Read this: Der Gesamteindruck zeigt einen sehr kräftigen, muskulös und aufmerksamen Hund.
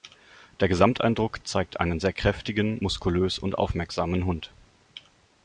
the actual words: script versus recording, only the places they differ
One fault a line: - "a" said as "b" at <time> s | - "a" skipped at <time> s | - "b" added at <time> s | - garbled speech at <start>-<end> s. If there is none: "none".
none